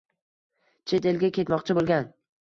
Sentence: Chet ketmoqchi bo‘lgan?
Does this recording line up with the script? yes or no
no